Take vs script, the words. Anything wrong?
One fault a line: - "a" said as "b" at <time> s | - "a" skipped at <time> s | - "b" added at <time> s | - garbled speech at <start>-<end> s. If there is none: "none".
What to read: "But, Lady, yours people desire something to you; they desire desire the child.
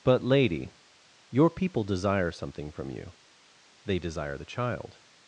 - "yours" said as "your" at 1.3 s
- "to" said as "from" at 2.7 s
- "desire" skipped at 4.4 s